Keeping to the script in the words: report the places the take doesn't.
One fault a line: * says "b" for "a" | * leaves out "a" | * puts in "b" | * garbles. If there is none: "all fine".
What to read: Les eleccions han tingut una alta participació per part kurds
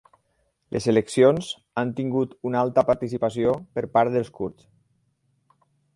* puts in "dels"